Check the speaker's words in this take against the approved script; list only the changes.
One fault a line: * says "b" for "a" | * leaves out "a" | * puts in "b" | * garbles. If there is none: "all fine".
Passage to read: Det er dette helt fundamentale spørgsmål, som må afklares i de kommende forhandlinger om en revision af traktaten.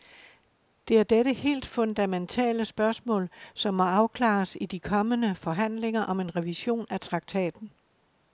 all fine